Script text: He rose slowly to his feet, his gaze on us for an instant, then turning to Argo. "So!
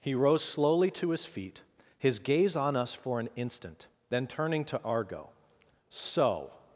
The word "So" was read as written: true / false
true